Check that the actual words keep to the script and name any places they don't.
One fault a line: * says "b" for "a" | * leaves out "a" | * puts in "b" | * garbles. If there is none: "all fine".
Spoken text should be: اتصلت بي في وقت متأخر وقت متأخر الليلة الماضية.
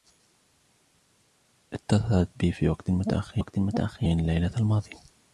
all fine